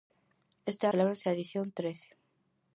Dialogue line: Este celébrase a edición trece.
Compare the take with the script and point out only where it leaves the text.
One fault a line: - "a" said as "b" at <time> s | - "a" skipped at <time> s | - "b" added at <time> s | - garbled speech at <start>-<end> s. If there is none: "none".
none